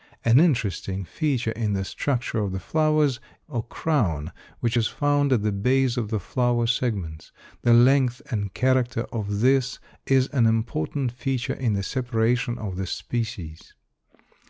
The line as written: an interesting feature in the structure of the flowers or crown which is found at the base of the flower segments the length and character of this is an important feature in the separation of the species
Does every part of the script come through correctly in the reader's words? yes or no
yes